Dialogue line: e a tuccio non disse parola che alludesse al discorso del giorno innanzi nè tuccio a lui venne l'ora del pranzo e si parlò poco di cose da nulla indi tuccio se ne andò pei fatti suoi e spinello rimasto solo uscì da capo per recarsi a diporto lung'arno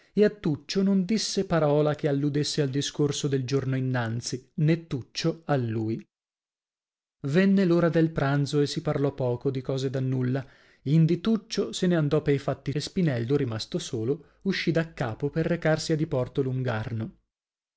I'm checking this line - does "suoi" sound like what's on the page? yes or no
no